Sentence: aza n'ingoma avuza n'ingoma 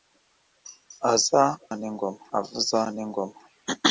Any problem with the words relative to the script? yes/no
no